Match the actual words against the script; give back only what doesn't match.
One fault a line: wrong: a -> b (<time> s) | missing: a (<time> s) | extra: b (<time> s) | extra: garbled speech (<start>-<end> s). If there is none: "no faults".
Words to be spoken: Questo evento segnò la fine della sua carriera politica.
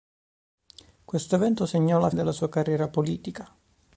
missing: fine (2.1 s)